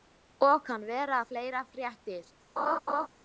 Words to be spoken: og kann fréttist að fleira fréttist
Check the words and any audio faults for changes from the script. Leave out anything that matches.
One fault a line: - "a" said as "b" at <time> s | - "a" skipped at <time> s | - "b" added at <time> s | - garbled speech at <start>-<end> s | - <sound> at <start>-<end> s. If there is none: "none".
- "fréttist" said as "vera" at 0.9 s
- laugh at 2.6-3.1 s